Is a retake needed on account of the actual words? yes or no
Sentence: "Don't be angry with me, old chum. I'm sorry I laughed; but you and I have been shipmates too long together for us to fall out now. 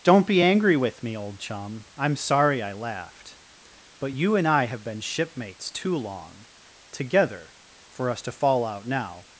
no